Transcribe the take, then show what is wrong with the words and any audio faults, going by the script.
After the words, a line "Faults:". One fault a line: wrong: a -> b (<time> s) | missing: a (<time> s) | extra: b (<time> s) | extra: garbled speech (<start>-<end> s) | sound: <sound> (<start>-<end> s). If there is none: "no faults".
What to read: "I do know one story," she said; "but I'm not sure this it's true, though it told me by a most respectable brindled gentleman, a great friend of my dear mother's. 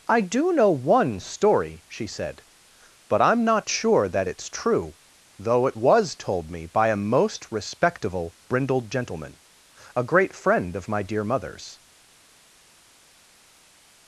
"I do know one story," she said; "but I'm not sure that it's true, though it was told me by a most respectable brindled gentleman, a great friend of my dear mother's.
Faults:
wrong: this -> that (4.1 s)
extra: was (5.8 s)